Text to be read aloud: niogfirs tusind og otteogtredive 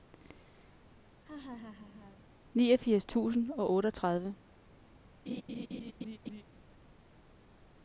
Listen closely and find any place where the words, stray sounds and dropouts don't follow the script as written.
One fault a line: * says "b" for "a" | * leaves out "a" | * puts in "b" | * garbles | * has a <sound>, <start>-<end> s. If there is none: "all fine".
* has a laugh, 1.2-2.3 s
* has a laugh, 5.3-6.4 s